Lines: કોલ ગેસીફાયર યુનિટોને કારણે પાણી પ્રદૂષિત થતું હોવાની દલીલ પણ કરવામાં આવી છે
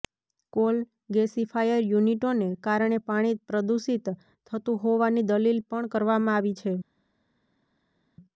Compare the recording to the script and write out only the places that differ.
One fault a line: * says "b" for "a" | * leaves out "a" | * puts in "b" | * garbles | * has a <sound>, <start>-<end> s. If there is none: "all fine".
all fine